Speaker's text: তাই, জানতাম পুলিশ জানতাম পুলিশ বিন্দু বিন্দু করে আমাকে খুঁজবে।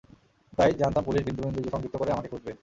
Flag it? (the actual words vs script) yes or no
yes